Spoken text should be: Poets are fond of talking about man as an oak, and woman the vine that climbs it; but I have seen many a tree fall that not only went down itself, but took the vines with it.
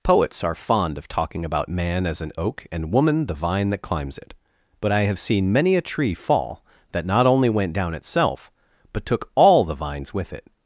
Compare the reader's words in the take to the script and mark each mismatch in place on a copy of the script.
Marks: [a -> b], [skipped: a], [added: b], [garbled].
Poets are fond of talking about man as an oak, and woman the vine that climbs it; but I have seen many a tree fall that not only went down itself, but took [added: all] the vines with it.